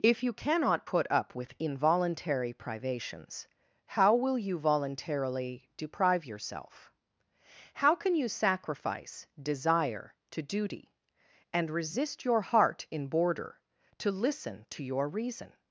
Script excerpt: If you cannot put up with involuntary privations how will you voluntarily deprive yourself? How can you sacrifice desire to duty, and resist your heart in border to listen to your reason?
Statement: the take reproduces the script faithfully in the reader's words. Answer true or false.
true